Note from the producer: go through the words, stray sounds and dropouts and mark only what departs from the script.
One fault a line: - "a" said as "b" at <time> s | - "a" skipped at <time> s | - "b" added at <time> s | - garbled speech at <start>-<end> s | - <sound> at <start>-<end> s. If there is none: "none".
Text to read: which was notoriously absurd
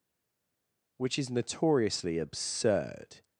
- "was" said as "is" at 1.2 s